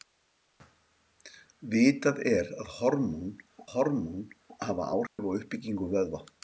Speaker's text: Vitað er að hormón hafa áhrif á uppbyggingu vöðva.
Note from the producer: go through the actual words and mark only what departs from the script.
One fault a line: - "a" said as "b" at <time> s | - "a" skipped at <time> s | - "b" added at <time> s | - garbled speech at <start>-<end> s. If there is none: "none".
- "hormón" added at 3.7 s